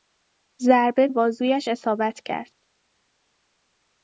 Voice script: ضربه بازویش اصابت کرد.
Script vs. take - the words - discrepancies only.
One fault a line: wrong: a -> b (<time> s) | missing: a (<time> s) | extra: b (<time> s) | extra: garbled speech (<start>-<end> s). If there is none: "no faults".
no faults